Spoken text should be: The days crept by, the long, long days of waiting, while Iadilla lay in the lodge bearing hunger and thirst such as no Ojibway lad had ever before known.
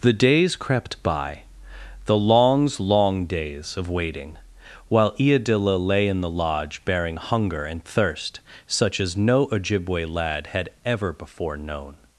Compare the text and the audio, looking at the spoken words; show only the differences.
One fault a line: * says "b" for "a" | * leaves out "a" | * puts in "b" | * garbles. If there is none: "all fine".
* says "longs" for "long"